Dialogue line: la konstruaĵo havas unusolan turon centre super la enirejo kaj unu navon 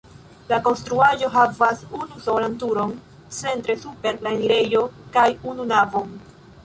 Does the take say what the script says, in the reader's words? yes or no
yes